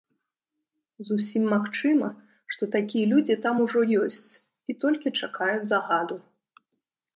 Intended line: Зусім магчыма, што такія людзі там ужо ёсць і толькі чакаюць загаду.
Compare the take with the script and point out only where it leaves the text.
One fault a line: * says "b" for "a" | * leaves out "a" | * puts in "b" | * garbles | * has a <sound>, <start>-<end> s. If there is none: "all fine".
all fine